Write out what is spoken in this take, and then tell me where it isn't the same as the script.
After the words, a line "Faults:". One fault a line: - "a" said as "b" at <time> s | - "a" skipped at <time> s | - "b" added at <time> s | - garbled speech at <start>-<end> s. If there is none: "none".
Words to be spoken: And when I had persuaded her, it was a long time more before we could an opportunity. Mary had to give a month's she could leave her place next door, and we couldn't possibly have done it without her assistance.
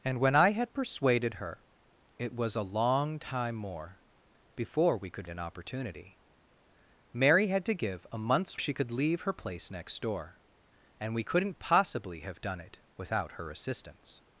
And when I had persuaded her, it was a long time more before we could an opportunity. Mary had to give a month's she could leave her place next door, and we couldn't possibly have done it without her assistance.
Faults:
none